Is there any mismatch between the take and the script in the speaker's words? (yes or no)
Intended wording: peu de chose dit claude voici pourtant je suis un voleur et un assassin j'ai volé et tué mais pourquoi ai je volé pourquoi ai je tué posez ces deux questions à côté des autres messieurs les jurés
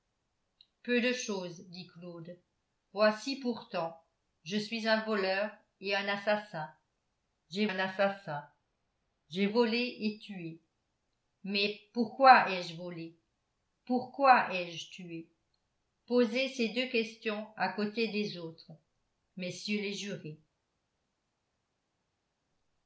yes